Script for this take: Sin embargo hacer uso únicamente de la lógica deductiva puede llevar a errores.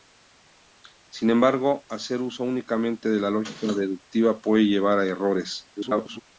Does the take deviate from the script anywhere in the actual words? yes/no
yes